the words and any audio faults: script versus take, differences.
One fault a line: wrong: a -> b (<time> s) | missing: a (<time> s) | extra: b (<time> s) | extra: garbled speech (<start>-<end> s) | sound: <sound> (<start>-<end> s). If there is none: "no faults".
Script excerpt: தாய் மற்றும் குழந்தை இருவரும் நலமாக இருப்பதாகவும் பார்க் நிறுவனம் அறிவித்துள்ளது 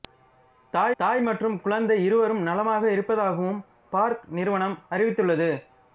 extra: தாய் (1.0 s)